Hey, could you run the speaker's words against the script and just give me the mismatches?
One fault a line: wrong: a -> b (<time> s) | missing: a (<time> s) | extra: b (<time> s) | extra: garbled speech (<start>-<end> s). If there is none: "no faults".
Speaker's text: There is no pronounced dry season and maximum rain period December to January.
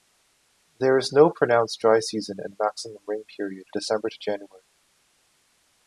no faults